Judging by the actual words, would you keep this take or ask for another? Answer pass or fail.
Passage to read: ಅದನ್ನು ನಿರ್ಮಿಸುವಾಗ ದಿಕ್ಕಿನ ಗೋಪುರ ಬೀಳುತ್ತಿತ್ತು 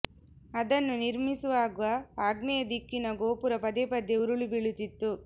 fail